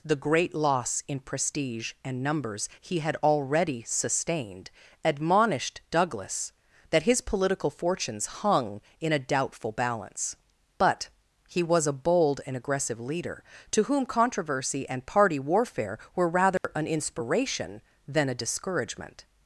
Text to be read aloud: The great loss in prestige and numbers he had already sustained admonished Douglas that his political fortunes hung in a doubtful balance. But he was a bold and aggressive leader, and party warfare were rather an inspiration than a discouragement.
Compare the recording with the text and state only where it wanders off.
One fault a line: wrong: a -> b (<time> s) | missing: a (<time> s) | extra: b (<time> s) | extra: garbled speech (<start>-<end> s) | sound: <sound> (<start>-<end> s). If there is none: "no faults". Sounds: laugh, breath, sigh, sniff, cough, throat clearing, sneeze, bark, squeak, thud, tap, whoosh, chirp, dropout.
extra: to whom controversy (13.7 s)
sound: dropout (16.6-16.6 s)